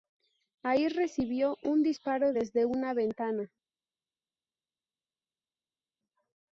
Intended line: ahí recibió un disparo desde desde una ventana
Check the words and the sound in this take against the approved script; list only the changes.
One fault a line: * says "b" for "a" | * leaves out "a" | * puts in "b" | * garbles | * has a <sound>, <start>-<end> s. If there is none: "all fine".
* leaves out "desde"